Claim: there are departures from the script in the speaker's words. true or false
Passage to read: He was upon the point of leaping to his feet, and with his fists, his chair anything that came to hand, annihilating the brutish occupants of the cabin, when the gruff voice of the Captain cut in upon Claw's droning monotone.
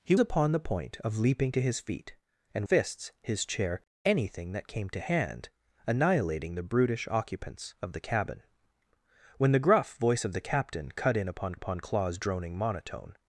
true